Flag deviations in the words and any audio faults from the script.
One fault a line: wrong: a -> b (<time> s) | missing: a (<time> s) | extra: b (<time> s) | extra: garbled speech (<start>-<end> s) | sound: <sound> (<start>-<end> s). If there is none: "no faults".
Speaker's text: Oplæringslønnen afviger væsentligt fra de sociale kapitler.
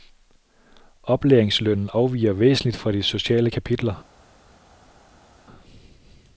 no faults